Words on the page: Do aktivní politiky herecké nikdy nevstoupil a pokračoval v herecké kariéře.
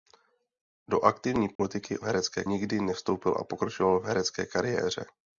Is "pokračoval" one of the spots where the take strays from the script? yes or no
no